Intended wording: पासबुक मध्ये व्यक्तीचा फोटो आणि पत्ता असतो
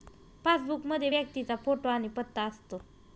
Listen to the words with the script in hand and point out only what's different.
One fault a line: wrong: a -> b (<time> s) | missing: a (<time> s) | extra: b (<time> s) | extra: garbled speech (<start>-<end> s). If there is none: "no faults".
no faults